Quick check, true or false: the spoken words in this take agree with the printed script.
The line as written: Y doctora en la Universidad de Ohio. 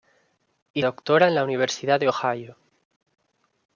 true